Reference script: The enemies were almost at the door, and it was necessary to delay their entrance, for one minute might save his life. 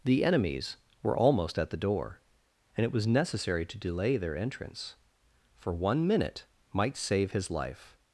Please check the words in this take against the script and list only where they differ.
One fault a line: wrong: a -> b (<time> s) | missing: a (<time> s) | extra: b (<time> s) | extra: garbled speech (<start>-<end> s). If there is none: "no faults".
no faults